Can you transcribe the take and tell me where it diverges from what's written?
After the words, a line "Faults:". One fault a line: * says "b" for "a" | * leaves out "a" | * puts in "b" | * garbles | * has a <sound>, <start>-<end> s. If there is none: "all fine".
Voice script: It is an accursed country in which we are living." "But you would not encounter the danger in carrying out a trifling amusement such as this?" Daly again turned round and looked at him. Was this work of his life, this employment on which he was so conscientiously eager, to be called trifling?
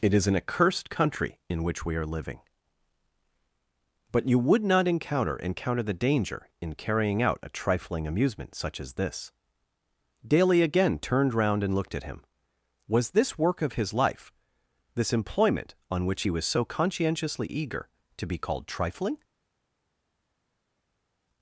It is an accursed country in which we are living." "But you would not encounter encounter the danger in carrying out a trifling amusement such as this?" Daly again turned round and looked at him. Was this work of his life, this employment on which he was so conscientiously eager, to be called trifling?
Faults:
* puts in "encounter"